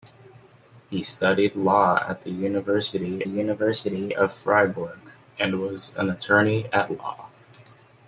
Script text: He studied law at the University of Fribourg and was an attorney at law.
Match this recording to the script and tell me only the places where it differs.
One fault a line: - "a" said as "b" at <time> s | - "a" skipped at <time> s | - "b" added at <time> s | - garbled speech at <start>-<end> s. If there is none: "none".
- "University" added at 3.3 s